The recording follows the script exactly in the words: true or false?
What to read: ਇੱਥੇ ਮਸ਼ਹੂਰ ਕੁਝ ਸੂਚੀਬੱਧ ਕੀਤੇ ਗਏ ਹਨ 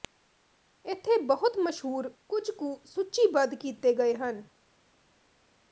false